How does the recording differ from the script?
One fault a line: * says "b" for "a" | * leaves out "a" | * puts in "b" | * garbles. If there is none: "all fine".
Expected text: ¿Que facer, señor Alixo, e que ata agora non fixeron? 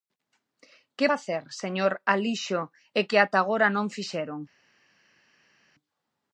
all fine